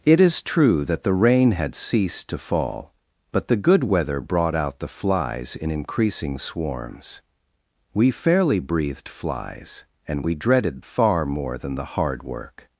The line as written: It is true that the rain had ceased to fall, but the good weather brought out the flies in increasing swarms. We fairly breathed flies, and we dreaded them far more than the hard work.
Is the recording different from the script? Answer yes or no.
yes